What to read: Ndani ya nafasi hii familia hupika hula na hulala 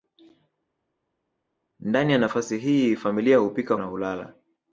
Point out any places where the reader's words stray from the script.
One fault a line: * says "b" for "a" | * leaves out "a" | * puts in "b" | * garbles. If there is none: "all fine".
* leaves out "hula"